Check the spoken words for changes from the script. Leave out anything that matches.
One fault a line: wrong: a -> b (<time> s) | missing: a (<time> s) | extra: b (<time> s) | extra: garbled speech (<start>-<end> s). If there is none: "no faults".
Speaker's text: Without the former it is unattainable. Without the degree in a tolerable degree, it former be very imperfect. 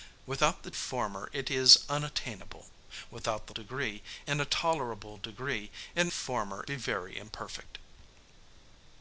no faults